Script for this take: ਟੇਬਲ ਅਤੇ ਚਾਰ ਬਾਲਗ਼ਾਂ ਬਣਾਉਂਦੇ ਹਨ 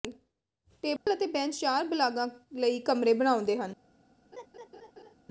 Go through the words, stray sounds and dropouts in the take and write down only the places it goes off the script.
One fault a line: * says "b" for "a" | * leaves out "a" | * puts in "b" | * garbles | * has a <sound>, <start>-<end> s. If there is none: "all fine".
* has a dropout, 1.0-1.1 s
* puts in "ਬੈਂਚ"
* puts in "ਲਈ ਕਮਰੇ"
* has a laugh, 4.3-5.1 s